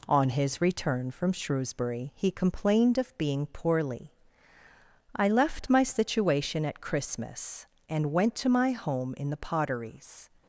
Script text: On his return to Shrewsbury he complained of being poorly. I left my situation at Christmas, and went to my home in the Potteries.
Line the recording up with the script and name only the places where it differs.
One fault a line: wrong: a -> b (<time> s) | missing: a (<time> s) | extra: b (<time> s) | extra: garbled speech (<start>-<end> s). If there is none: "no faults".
wrong: to -> from (1.1 s)